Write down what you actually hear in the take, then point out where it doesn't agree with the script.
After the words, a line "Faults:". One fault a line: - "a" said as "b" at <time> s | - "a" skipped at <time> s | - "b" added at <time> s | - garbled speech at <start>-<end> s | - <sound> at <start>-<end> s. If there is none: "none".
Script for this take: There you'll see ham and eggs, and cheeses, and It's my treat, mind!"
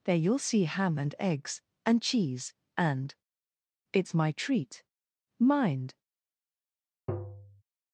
There you'll see ham and eggs, and cheese, and It's my treat, mind!"
Faults:
- "cheeses" said as "cheese" at 2.0 s
- tap at 7.1-7.6 s